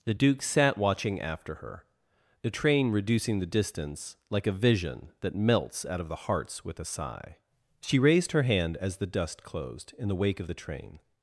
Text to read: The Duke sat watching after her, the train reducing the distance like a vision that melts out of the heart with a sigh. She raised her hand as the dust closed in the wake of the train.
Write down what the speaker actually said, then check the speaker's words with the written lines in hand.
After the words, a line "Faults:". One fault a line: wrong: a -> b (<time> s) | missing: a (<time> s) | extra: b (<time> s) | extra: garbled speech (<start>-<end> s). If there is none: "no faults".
The Duke sat watching after her, the train reducing the distance like a vision that melts out of the hearts with a sigh. She raised her hand as the dust closed in the wake of the train.
Faults:
wrong: heart -> hearts (6.1 s)